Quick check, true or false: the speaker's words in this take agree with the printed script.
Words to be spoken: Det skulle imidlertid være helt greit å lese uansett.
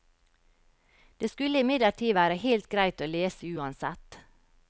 true